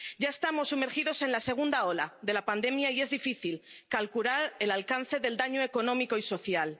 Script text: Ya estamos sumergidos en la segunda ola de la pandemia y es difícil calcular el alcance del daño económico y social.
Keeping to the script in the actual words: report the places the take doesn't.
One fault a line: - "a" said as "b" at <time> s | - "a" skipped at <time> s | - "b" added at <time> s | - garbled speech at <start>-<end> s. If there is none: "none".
none